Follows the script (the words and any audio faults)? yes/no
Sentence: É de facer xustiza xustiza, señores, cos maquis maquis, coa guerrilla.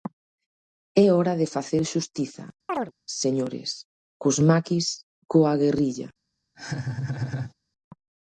no